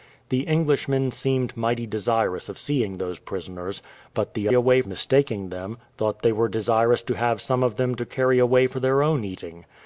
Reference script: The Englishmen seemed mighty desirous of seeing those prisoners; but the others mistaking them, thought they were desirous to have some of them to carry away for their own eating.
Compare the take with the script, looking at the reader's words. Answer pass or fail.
fail